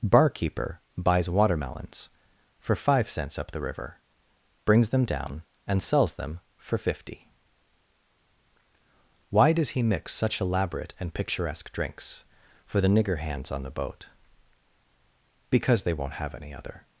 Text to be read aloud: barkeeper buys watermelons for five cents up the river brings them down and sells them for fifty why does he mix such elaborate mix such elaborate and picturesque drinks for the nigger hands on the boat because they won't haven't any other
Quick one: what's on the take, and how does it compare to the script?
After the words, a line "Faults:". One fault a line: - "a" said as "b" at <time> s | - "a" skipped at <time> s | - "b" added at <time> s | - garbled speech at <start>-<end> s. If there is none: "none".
barkeeper buys watermelons for five cents up the river brings them down and sells them for fifty why does he mix such elaborate and picturesque drinks for the nigger hands on the boat because they won't have any other
Faults:
- "mix such elaborate" skipped at 10.9 s
- "haven't" said as "have" at 16.1 s